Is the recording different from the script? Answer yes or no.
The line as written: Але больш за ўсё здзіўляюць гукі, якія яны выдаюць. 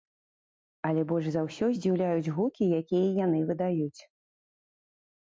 no